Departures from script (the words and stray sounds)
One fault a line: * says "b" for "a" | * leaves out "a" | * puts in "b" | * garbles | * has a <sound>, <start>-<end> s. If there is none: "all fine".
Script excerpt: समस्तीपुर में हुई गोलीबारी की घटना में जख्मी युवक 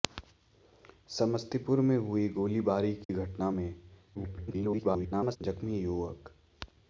* has a dropout, 3.0-3.1 s
* garbles